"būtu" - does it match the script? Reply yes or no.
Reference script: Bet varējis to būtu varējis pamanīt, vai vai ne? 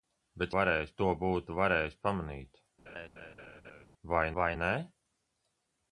yes